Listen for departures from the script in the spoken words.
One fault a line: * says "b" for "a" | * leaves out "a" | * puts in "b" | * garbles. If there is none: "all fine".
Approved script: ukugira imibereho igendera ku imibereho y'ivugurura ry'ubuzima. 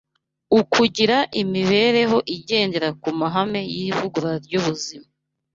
* says "mahame" for "imibereho"